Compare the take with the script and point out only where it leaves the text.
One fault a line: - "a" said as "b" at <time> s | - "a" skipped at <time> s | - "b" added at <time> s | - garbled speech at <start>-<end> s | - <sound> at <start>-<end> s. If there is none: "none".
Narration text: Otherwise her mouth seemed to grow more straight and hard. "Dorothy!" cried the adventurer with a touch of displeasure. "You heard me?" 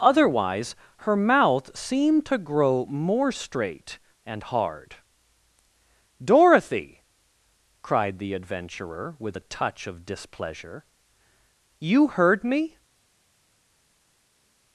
none